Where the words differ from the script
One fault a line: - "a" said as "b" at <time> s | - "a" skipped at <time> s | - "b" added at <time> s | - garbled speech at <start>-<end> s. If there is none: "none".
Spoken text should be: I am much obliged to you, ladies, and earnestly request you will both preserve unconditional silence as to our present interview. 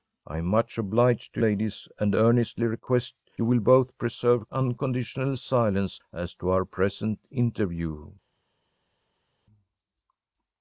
- "you" skipped at 1.4 s